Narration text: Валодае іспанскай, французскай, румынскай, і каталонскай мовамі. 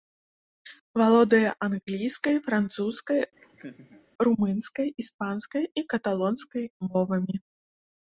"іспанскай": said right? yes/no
no